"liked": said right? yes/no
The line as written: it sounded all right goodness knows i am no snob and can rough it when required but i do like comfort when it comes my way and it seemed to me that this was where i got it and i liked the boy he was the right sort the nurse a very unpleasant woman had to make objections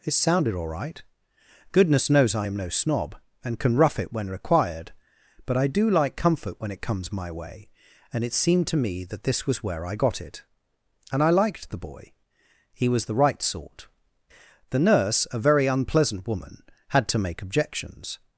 yes